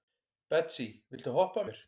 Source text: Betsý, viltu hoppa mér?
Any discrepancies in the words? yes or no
no